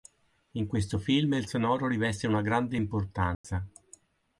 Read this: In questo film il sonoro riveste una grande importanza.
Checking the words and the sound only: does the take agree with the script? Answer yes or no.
no